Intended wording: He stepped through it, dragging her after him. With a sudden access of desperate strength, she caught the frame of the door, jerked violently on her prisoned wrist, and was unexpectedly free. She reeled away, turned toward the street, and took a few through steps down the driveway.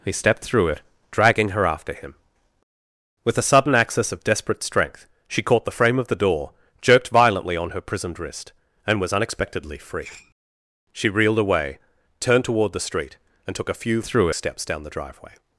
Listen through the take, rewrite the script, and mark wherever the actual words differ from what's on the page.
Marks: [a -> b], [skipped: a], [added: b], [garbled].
He stepped through it, dragging her after him. With a sudden access of desperate strength, she caught the frame of the door, jerked violently on her prisoned wrist, and was unexpectedly free. She reeled away, turned toward the street, and took a few through steps down the driveway.